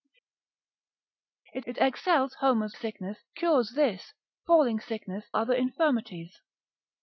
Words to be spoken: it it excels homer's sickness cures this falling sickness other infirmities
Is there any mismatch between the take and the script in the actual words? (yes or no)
no